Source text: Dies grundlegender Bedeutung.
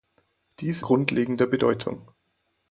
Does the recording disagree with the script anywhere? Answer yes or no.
no